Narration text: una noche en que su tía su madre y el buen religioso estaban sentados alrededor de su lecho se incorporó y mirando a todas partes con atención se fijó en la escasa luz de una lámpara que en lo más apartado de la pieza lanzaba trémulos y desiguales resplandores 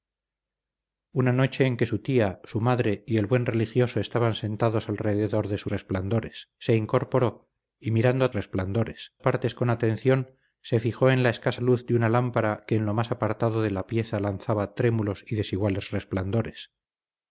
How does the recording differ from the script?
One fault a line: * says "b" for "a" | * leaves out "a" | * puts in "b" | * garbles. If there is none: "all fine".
* says "resplandores" for "lecho"
* says "resplandores" for "todas"